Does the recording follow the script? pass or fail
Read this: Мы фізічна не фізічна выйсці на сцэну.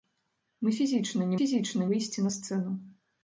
pass